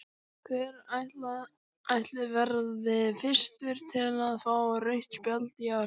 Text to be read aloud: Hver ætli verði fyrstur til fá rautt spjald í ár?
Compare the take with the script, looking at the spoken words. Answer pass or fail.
fail